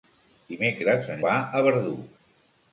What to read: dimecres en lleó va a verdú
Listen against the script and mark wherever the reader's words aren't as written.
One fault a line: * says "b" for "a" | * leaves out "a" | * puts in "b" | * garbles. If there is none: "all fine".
* leaves out "lleó"